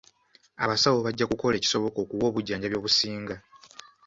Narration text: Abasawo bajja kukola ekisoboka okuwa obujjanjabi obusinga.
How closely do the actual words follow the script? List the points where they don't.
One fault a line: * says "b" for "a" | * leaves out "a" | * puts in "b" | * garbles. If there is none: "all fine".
all fine